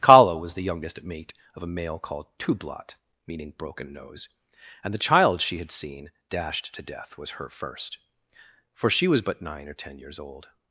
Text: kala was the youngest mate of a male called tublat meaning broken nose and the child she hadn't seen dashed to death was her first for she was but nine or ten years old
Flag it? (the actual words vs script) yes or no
yes